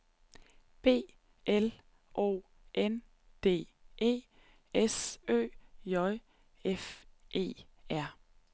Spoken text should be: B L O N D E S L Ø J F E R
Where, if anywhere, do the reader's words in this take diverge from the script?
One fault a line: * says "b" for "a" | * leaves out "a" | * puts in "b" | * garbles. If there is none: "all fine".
* leaves out "L"